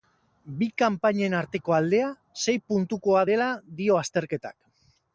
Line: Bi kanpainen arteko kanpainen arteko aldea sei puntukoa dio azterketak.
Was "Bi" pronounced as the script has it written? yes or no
yes